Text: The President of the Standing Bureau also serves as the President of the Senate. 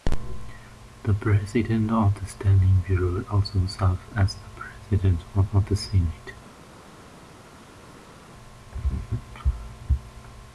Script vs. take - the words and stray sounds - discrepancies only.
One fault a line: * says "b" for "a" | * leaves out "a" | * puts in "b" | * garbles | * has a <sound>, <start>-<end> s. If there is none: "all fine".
* puts in "of"